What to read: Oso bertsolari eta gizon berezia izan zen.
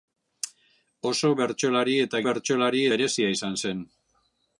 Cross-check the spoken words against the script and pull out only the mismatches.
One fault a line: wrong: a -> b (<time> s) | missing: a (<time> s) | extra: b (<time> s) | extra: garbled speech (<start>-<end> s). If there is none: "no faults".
wrong: gizon -> bertsolari (2.3 s)